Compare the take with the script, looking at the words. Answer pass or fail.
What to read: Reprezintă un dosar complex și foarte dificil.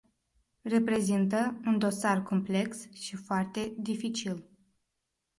pass